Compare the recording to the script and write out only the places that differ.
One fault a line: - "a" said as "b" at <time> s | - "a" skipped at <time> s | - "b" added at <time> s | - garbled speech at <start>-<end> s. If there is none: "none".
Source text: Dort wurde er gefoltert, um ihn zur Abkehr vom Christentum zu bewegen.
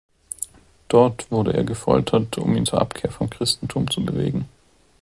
none